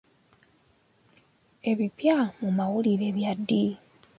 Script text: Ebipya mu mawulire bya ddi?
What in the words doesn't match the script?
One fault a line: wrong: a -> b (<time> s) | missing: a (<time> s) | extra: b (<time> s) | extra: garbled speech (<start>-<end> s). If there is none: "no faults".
no faults